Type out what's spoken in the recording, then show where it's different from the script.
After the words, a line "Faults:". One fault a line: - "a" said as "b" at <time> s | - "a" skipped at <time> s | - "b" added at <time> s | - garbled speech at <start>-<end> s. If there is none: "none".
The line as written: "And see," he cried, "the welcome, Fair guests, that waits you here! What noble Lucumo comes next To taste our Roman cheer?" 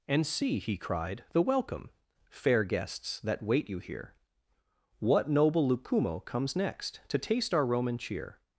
"And see," he cried, "the welcome, Fair guests, that wait you here! What noble Lucumo comes next To taste our Roman cheer?"
Faults:
- "waits" said as "wait" at 3.4 s